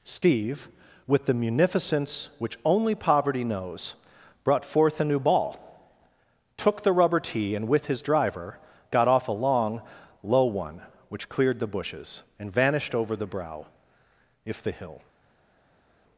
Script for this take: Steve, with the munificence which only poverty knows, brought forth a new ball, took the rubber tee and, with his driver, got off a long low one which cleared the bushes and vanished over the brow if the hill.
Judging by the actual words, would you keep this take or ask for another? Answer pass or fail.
pass